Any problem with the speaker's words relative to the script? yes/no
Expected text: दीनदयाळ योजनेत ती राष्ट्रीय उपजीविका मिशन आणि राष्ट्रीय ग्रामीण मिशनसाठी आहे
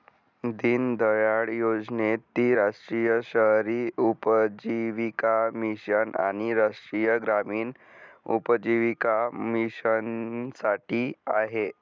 yes